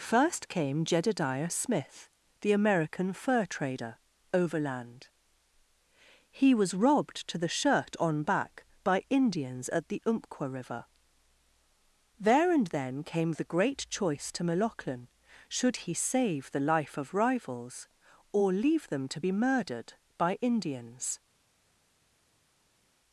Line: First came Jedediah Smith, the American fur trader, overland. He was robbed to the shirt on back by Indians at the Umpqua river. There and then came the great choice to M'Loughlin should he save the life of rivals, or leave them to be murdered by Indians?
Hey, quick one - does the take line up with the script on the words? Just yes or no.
yes